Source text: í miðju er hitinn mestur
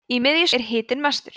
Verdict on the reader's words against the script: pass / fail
pass